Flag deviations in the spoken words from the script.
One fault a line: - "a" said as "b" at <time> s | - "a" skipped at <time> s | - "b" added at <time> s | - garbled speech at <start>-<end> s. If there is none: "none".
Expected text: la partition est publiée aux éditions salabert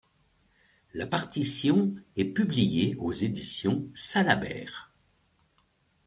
none